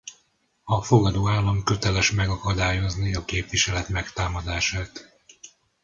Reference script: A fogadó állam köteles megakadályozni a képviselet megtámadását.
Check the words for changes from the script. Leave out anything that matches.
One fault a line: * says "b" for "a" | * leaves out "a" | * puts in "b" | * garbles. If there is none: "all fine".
all fine